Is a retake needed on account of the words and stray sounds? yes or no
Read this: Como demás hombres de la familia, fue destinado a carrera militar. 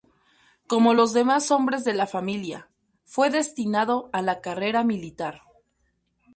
yes